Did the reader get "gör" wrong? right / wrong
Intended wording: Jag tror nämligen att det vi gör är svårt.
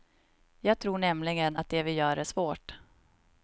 right